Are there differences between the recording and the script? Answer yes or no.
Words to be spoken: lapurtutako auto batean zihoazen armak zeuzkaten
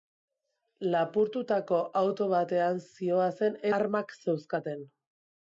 no